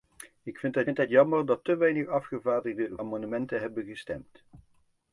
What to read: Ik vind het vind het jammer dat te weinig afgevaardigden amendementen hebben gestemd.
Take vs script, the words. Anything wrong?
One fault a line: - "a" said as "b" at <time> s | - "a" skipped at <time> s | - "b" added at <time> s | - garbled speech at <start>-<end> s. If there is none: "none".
none